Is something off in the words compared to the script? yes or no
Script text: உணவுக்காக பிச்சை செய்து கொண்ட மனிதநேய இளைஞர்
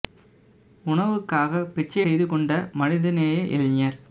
no